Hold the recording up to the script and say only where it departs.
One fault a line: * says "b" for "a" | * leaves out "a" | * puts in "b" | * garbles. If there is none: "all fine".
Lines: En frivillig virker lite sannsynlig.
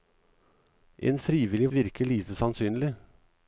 all fine